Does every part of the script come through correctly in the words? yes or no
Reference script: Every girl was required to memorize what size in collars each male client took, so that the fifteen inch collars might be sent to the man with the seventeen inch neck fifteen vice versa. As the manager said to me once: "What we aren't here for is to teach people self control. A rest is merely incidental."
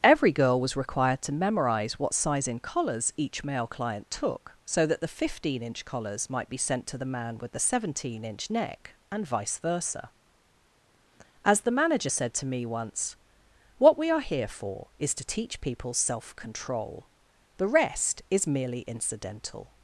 no